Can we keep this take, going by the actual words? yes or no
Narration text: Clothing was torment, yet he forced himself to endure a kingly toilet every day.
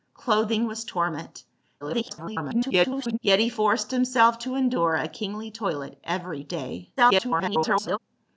no